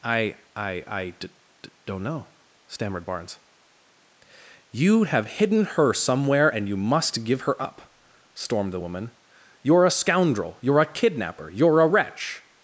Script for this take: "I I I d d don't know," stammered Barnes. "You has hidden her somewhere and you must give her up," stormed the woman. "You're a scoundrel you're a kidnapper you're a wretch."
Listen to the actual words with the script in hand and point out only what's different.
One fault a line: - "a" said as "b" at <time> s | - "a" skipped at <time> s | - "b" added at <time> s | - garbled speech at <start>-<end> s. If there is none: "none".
- "has" said as "have" at 5.0 s